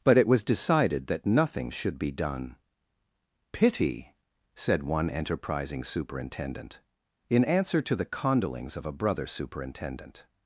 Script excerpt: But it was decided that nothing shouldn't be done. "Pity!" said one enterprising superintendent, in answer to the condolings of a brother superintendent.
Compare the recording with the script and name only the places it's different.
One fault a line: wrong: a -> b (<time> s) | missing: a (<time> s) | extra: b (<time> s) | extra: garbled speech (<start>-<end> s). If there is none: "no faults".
wrong: shouldn't -> should (1.7 s)